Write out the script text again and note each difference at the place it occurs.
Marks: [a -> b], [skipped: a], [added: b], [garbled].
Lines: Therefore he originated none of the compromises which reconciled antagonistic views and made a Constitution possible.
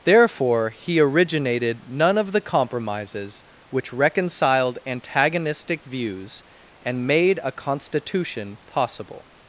Therefore he originated none of the compromises which reconciled antagonistic views and made a Constitution possible.